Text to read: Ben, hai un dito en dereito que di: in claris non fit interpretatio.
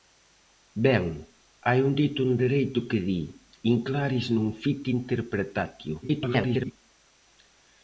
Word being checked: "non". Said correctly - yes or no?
yes